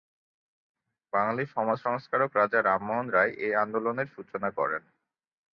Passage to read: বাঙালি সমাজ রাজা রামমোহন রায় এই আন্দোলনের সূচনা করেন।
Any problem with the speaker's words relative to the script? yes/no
yes